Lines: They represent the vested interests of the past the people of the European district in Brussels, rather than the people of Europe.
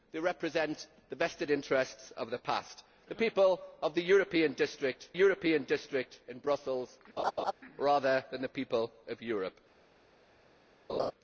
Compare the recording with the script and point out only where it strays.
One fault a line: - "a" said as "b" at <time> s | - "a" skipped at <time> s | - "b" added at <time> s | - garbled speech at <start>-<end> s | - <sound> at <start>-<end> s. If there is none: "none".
- "European district" added at 5.1 s
- laugh at 7.2-7.5 s
- laugh at 10.9-11.1 s